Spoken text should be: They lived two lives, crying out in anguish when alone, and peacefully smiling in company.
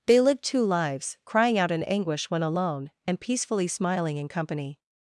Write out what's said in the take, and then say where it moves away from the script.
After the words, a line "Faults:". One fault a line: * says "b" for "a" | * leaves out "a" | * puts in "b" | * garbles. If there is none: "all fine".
They lived two lives, crying out in anguish when alone, and peacefully smiling in company.
Faults:
all fine